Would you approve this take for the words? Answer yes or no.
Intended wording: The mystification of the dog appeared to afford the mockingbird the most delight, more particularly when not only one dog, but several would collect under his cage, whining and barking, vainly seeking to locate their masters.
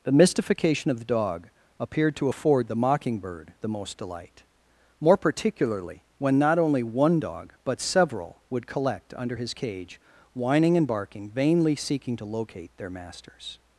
yes